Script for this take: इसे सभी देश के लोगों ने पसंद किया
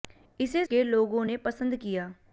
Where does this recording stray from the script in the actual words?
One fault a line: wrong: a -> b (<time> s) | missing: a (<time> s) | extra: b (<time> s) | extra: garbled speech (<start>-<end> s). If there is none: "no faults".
missing: सभी देश (0.6 s)